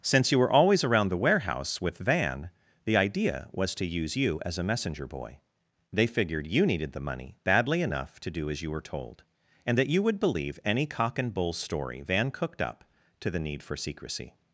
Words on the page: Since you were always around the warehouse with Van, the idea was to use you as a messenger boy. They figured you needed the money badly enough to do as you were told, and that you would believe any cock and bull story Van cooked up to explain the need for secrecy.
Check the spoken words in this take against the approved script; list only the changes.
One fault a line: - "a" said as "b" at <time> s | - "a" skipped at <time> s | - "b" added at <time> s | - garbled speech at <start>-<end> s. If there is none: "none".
- "explain" skipped at 13.3 s